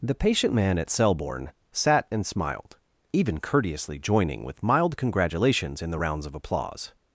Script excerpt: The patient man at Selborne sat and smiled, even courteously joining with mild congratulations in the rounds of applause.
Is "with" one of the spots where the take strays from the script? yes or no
no